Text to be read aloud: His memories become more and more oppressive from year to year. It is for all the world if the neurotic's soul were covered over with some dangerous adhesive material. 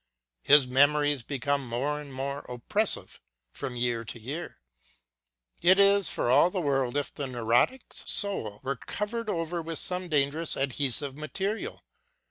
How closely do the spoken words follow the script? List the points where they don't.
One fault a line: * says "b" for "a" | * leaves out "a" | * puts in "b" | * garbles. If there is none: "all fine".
all fine